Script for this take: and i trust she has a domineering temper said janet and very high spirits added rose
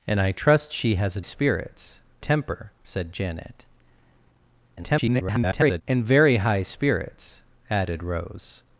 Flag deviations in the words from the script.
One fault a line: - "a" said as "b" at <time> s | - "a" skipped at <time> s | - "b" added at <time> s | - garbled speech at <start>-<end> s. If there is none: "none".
- "domineering" said as "spirits" at 1.2 s
- garbled speech at 4.8-5.8 s